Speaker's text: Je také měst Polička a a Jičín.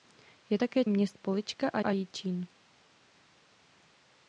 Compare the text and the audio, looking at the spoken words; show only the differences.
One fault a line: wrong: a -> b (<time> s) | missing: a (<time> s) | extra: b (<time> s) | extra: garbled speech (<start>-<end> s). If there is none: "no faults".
no faults